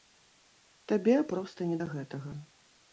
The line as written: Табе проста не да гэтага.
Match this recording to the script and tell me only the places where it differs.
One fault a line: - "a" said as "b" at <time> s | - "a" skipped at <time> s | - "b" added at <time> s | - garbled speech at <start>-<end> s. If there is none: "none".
none